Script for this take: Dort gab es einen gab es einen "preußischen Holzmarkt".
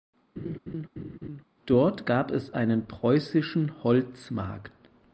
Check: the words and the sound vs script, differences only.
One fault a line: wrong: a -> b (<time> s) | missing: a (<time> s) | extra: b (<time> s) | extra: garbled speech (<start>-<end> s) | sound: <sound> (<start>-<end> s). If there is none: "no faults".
sound: laugh (0.4-1.4 s)
missing: gab es einen (2.9 s)